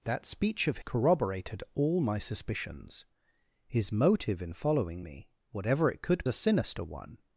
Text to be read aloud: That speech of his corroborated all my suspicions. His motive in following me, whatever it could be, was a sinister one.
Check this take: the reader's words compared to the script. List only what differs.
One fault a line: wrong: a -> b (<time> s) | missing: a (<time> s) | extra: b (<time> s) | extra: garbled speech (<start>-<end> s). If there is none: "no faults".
missing: his (0.8 s)
missing: be was (6.2 s)